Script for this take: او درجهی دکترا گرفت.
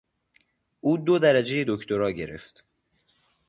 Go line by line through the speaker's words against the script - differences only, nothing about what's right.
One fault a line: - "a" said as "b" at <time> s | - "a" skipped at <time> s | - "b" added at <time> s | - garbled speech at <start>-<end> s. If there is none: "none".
- "دو" added at 1.0 s